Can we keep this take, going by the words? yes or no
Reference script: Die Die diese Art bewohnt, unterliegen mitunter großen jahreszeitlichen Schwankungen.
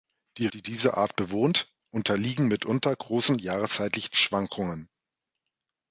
yes